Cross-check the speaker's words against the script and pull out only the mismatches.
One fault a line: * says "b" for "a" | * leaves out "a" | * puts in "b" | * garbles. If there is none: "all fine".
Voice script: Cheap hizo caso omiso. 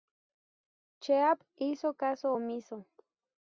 all fine